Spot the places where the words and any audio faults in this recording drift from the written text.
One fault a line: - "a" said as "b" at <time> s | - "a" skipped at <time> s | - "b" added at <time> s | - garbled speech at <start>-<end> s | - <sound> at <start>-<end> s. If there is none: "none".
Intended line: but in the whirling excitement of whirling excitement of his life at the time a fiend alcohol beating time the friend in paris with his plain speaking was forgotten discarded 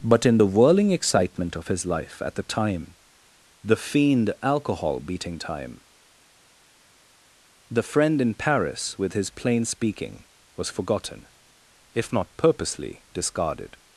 - "whirling excitement of" skipped at 1.7 s
- "a" said as "the" at 3.6 s
- "if not purposely" added at 11.9 s